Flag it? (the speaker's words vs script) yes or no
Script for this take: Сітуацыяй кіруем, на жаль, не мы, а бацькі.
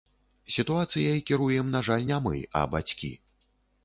no